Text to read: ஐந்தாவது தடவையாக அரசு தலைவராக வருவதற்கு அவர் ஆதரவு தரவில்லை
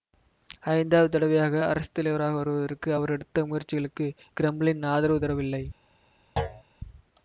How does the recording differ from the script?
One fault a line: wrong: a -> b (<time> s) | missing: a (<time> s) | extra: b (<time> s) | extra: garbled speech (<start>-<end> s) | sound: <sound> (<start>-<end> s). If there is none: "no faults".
extra: எடுத்த முயற்சிகளுக்கு கிரெம்ளின் (3.1 s)
sound: thud (6.4-6.6 s)